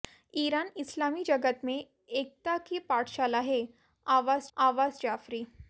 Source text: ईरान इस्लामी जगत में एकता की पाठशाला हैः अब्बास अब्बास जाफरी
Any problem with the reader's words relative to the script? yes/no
no